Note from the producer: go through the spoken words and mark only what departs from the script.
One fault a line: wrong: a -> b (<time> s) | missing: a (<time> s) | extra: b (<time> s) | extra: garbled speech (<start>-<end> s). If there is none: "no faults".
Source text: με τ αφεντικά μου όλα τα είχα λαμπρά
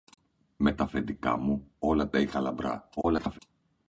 extra: garbled speech (3.0-3.4 s)